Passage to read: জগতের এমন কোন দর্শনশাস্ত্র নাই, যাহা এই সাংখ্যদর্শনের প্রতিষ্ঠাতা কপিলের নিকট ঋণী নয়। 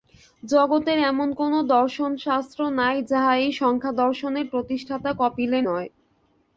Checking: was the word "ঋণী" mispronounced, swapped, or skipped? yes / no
yes